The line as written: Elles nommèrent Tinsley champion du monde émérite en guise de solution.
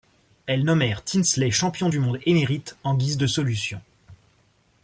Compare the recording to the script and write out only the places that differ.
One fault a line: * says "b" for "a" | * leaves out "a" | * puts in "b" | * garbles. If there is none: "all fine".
all fine